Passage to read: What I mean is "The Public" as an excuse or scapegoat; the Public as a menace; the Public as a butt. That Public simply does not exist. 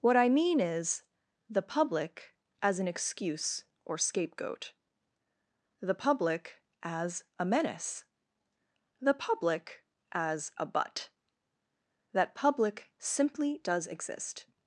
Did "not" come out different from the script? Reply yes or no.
yes